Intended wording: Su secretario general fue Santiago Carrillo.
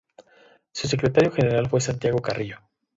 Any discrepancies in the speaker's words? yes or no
no